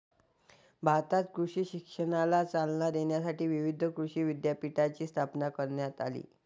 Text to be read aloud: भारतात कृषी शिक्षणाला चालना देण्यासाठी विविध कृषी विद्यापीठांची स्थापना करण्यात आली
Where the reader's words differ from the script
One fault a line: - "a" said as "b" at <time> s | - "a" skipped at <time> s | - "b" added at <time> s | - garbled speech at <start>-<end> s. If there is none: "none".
none